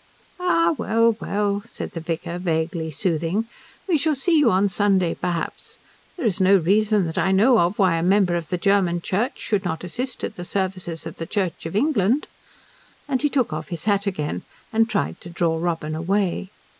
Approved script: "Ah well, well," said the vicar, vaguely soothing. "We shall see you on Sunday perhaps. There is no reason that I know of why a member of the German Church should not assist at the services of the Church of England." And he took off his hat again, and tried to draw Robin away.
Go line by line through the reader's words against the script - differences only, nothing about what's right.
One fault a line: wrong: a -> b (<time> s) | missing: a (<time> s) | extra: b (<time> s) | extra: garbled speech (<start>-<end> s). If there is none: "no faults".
no faults